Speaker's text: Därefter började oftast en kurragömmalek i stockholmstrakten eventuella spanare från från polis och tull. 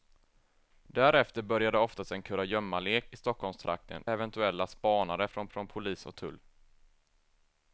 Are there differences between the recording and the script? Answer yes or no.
no